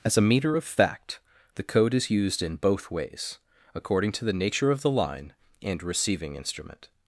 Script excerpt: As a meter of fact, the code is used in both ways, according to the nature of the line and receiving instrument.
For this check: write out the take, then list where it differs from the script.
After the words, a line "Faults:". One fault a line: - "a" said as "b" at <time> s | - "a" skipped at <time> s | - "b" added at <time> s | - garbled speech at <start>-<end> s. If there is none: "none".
As a meter of fact, the code is used in both ways, according to the nature of the line and receiving instrument.
Faults:
none